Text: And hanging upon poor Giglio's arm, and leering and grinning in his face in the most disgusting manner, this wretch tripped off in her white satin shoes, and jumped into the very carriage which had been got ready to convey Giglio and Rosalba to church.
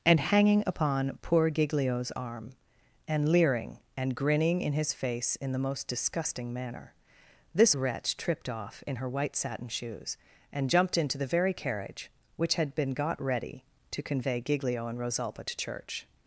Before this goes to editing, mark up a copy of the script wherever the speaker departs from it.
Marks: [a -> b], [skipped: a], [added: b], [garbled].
And hanging upon poor Giglio's arm, and leering and grinning in his face in the most disgusting manner, this wretch tripped off in her white satin shoes, and jumped into the very carriage which had been got ready to convey Giglio and Rosalba to church.